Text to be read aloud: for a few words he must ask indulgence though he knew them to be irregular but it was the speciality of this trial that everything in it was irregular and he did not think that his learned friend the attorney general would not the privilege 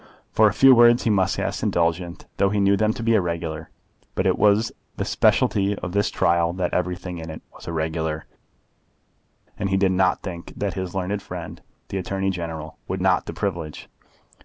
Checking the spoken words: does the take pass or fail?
pass